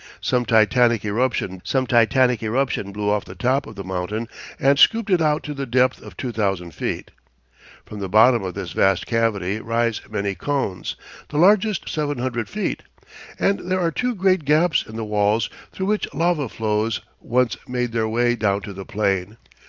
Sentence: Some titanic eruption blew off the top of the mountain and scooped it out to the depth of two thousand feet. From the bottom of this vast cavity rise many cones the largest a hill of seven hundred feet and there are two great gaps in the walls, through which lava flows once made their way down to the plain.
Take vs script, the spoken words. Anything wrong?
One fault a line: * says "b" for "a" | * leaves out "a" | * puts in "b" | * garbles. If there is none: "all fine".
* puts in "some titanic eruption"
* leaves out "a hill of"